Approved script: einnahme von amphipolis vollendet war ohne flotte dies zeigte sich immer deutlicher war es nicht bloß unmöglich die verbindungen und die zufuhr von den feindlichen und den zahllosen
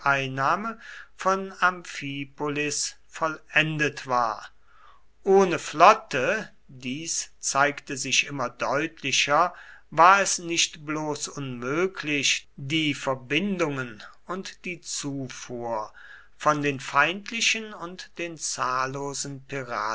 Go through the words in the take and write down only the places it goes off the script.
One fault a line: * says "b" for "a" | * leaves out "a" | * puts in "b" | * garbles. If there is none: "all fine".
all fine